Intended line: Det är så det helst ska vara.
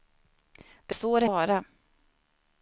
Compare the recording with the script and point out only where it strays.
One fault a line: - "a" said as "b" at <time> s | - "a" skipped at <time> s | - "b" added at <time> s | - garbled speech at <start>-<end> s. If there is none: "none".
- "är" skipped at 0.9 s
- "helst ska" skipped at 1.3 s